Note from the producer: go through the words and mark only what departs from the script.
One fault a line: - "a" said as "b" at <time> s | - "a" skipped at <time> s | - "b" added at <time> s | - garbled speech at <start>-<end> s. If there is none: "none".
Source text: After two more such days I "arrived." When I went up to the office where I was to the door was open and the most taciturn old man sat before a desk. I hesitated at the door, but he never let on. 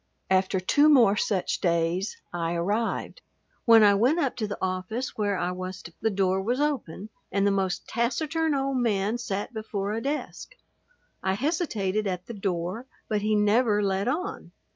none